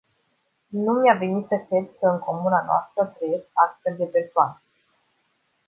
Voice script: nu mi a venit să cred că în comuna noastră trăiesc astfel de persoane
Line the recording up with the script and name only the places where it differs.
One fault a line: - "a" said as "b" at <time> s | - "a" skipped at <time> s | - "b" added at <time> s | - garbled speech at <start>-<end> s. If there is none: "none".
none